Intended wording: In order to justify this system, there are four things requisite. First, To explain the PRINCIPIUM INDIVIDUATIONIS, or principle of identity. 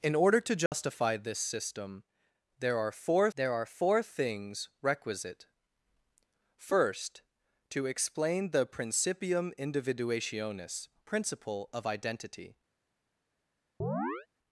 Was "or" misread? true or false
true